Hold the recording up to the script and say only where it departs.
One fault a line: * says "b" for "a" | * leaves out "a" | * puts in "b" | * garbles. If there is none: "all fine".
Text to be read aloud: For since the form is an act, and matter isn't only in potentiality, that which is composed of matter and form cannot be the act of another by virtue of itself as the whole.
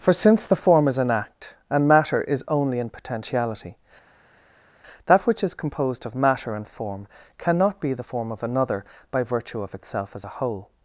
* says "is" for "isn't"
* says "form" for "act"
* says "a" for "the"